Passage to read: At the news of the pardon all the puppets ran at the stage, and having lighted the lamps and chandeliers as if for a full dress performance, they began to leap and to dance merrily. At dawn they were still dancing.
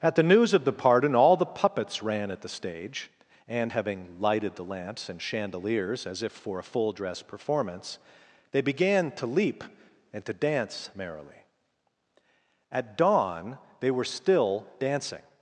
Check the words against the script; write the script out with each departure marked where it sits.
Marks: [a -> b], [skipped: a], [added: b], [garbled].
At the news of the pardon all the puppets ran at the stage, and having lighted the lamps and chandeliers as if for a full dress performance, they began to leap and to dance merrily. At dawn they were still dancing.